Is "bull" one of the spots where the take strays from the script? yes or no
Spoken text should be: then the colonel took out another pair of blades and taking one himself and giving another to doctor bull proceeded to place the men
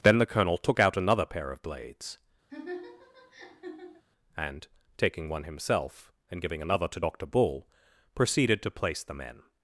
no